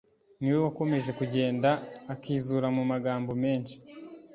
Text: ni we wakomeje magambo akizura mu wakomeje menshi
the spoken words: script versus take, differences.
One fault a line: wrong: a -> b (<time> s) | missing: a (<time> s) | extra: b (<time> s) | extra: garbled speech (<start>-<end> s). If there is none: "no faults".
wrong: magambo -> kugenda (1.2 s)
wrong: wakomeje -> magambo (2.9 s)